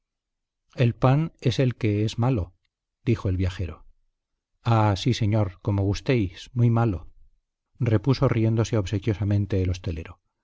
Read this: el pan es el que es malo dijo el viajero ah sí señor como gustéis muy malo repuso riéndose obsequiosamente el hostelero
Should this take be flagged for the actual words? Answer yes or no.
no